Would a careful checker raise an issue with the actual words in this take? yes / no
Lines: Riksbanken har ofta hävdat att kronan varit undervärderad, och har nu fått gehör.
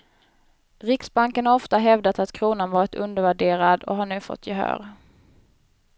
no